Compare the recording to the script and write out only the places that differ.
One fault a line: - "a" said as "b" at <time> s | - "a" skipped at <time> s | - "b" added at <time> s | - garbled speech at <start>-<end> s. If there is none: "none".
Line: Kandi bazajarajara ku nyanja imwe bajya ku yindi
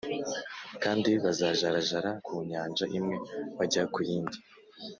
none